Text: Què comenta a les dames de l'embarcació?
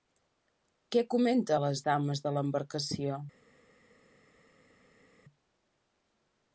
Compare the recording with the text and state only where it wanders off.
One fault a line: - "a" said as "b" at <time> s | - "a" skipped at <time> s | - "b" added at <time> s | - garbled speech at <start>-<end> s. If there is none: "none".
none